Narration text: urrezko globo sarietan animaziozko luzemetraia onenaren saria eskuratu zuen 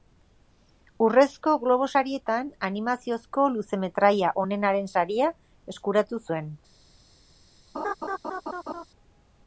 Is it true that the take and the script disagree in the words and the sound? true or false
true